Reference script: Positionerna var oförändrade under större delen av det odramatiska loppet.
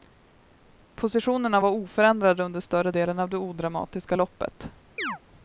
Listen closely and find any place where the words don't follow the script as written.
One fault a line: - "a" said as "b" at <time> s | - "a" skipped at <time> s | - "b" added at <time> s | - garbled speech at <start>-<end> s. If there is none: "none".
none